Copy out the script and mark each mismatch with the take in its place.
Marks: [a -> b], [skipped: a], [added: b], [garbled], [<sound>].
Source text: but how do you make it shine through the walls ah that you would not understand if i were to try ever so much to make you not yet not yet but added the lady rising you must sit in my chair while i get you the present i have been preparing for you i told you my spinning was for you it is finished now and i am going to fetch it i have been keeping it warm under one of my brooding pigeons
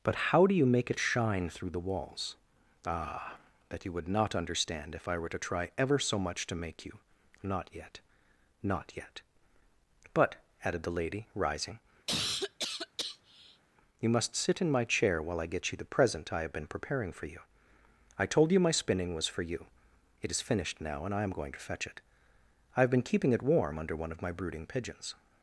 but how do you make it shine through the walls ah that you would not understand if i were to try ever so much to make you not yet not yet but added the lady rising [cough] you must sit in my chair while i get you the present i have been preparing for you i told you my spinning was for you it is finished now and i am going to fetch it i have been keeping it warm under one of my brooding pigeons